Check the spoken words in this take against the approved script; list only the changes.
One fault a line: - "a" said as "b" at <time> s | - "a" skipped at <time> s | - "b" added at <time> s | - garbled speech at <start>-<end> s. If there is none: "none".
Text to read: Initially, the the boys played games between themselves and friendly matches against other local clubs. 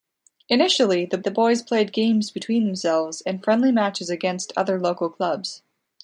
none